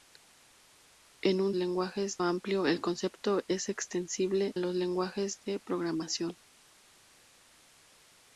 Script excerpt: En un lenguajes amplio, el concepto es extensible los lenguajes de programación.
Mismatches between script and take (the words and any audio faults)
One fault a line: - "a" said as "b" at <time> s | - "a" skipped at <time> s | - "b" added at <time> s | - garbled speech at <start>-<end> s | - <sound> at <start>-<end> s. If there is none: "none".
none